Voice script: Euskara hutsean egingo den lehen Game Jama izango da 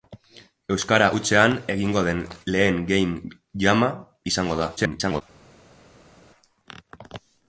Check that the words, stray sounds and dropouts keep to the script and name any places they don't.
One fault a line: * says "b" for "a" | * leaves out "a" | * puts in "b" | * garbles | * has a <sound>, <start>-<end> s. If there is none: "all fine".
* garbles